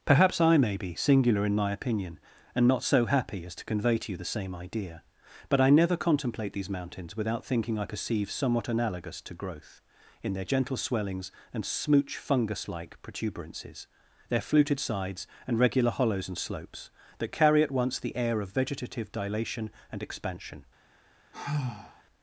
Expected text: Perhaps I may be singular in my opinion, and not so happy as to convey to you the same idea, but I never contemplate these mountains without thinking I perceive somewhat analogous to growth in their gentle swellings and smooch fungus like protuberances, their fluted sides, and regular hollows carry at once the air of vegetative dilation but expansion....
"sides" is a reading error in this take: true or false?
false